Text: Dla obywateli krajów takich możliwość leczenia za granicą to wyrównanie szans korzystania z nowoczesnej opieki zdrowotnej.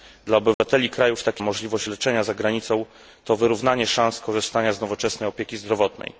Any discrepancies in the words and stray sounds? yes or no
yes